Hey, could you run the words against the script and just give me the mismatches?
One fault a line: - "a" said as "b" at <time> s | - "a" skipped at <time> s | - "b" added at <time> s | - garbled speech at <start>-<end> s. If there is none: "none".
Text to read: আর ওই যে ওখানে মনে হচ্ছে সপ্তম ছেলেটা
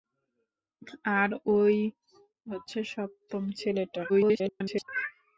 - "যে ওখানে মনে" skipped at 1.8 s
- garbled speech at 4.1-4.9 s